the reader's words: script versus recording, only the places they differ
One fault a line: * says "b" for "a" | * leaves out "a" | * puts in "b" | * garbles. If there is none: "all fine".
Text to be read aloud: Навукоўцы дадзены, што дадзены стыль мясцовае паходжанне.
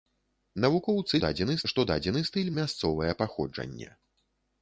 all fine